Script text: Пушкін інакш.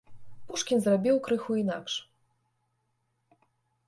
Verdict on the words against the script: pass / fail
fail